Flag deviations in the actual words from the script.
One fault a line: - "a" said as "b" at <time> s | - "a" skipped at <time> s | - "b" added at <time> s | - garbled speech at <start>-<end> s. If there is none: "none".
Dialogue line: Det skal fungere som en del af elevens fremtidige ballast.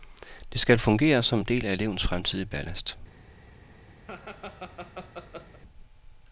none